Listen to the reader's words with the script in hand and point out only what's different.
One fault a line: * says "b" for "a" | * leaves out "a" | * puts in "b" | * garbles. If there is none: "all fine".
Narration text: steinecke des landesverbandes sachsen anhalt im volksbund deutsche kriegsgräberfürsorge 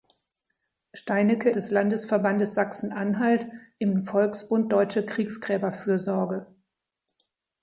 all fine